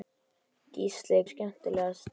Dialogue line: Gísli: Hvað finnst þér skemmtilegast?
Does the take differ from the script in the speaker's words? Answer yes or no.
yes